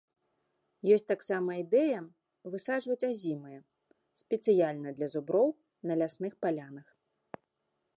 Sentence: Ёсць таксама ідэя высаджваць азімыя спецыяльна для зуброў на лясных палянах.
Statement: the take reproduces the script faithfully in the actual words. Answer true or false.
true